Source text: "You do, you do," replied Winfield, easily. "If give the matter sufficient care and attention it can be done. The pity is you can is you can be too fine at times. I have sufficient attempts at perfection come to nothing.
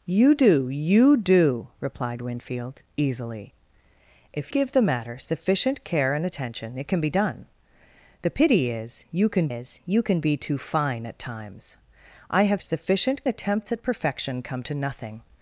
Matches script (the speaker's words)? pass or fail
pass